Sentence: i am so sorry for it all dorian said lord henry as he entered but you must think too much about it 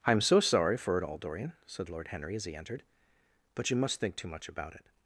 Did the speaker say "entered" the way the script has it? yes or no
yes